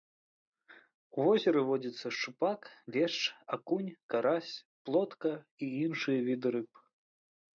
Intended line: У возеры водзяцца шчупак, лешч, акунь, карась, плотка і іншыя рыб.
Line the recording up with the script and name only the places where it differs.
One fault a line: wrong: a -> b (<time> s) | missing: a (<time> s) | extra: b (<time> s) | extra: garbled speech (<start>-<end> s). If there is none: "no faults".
extra: віды (6.3 s)